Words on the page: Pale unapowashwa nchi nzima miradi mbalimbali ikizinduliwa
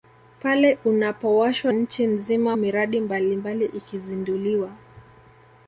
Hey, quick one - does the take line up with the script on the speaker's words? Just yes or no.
yes